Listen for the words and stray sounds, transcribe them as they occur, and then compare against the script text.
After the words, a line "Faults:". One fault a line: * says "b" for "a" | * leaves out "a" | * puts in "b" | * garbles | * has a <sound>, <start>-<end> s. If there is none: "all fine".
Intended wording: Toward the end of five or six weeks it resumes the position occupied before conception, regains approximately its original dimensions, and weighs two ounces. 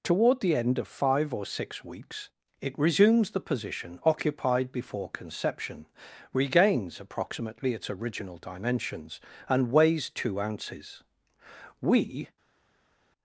Toward the end of five or six weeks it resumes the position occupied before conception, regains approximately its original dimensions, and weighs two ounces. We
Faults:
* puts in "We"